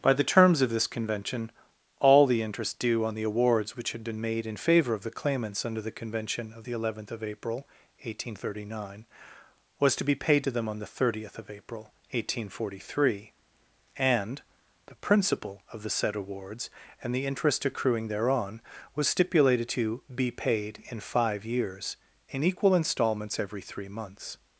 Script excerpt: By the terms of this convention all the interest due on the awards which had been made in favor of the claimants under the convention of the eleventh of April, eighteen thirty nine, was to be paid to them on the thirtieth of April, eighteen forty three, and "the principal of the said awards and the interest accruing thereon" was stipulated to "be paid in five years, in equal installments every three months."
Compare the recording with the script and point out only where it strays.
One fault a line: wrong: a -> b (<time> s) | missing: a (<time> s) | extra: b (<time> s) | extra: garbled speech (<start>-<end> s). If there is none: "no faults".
no faults